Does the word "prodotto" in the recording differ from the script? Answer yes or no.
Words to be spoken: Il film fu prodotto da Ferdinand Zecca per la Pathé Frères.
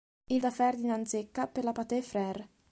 yes